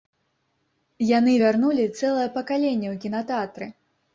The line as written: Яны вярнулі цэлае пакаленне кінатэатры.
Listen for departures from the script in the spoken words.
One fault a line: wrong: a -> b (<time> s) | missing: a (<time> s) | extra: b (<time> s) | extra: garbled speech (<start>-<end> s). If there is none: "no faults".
extra: ў (2.9 s)